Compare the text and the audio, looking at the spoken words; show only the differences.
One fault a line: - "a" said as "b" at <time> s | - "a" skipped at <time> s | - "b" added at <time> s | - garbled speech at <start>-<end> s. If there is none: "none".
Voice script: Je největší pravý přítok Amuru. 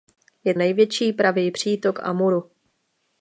none